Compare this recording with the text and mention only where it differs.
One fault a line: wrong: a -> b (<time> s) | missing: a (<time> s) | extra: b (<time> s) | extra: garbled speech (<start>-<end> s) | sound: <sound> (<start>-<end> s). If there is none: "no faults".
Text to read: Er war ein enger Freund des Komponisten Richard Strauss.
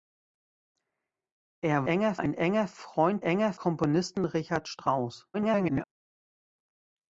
wrong: war -> enger (1.8 s)
wrong: des -> enger (3.2 s)
extra: garbled speech (5.3-5.8 s)